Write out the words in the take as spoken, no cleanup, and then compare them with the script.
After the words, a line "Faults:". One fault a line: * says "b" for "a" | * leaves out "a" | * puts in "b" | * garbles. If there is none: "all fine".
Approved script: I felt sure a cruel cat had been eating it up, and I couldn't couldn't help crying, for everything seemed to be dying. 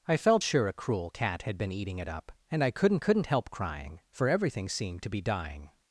I felt sure a cruel cat had been eating it up, and I couldn't couldn't help crying, for everything seemed to be dying.
Faults:
all fine